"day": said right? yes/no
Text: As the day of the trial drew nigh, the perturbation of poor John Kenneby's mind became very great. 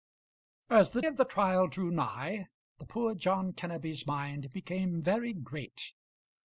no